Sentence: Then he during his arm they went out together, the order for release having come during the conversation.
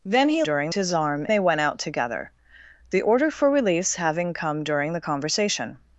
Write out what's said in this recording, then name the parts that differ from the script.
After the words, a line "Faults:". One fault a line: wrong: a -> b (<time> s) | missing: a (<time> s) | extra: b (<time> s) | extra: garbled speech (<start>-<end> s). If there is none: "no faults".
Then he during his arm they went out together, the order for release having come during the conversation.
Faults:
no faults